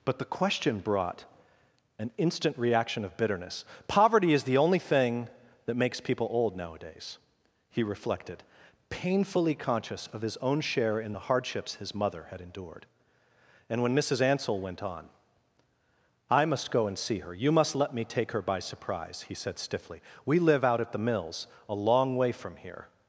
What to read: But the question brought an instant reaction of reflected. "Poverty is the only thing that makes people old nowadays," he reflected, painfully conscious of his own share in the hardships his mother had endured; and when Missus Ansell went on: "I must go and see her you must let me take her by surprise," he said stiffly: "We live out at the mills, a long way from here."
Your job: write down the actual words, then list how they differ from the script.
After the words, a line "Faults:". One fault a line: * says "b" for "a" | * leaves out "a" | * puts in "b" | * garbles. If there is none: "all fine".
But the question brought an instant reaction of bitterness. "Poverty is the only thing that makes people old nowadays," he reflected, painfully conscious of his own share in the hardships his mother had endured; and when Missus Ansell went on: "I must go and see her you must let me take her by surprise," he said stiffly: "We live out at the mills, a long way from here."
Faults:
* says "bitterness" for "reflected"